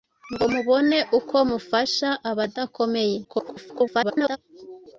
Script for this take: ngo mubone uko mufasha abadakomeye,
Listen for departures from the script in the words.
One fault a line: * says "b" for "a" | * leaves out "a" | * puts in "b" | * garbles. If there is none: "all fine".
* garbles